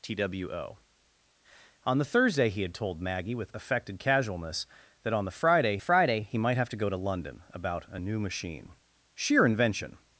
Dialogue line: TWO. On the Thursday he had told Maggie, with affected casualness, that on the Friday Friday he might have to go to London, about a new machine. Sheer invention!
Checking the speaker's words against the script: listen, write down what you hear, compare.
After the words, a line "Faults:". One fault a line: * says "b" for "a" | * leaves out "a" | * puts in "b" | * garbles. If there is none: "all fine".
TWO. On the Thursday he had told Maggie, with affected casualness, that on the Friday Friday he might have to go to London, about a new machine. Sheer invention!
Faults:
all fine